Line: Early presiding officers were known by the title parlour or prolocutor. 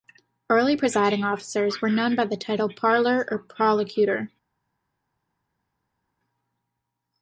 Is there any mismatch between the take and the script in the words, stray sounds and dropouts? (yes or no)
no